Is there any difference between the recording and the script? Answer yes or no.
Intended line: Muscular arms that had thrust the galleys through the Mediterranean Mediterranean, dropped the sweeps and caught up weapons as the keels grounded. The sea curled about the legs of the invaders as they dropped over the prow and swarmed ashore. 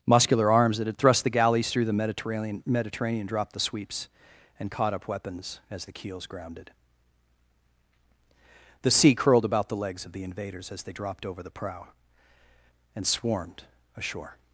no